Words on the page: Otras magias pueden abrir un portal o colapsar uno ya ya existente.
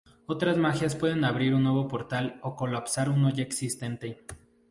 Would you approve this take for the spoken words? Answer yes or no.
no